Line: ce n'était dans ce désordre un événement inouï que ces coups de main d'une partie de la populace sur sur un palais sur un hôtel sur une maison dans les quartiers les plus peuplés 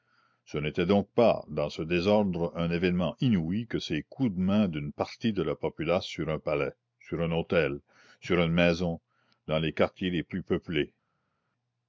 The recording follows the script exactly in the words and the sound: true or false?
false